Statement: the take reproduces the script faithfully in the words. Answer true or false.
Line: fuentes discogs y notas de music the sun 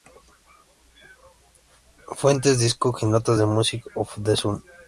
false